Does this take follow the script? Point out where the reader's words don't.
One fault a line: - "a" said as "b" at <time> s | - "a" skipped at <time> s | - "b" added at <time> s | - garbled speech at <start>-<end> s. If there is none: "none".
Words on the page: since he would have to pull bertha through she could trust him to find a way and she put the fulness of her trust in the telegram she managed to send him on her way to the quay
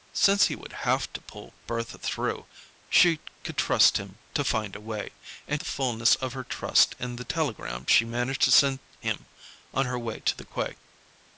- "she put" skipped at 5.6 s